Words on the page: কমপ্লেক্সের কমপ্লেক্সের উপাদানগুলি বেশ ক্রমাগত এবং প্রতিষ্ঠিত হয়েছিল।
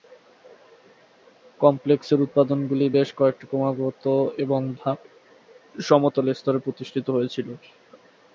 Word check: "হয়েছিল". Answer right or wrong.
right